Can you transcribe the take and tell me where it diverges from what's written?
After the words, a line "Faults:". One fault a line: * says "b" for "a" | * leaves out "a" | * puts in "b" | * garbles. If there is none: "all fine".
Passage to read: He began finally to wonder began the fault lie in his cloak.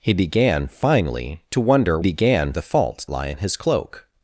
He began finally to wonder began the fault lie in his cloak.
Faults:
all fine